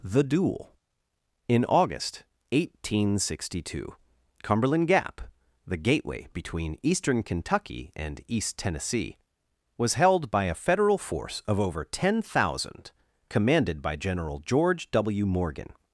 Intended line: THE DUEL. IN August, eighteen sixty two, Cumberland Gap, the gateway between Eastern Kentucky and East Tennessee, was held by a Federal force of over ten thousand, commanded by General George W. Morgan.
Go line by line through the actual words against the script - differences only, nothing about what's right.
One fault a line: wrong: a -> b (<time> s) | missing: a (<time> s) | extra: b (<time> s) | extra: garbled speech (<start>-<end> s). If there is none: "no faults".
no faults